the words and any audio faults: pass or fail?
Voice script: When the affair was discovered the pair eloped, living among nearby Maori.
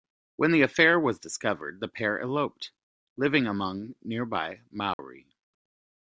fail